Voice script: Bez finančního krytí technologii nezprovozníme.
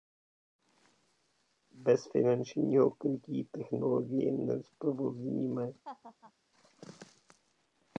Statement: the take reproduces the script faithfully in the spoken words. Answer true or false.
true